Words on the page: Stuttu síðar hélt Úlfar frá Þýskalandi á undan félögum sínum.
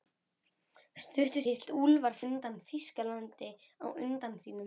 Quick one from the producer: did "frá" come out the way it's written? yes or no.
no